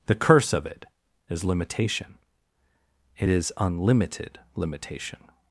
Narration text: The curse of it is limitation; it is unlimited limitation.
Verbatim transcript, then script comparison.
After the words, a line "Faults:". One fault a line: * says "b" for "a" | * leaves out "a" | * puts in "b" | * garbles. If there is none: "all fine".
The curse of it is limitation; it is unlimited limitation.
Faults:
all fine